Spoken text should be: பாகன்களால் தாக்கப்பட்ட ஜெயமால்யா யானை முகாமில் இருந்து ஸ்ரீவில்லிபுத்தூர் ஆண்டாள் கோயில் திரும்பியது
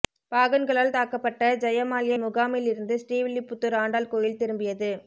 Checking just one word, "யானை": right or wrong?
wrong